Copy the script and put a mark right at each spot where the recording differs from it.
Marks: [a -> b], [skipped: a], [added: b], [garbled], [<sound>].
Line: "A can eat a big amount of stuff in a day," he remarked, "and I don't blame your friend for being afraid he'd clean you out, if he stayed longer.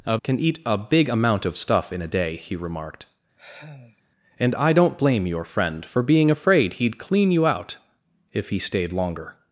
"A can eat a big amount of stuff in a day," he remarked, [sigh] "and I don't blame your friend for being afraid he'd clean you out, if he stayed longer.